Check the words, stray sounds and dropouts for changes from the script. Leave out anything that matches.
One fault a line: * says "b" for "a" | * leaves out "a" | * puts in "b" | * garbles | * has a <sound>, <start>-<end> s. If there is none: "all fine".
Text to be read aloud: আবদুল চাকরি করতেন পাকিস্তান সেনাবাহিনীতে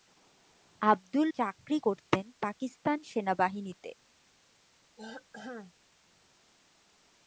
* has a throat clearing, 5.0-5.7 s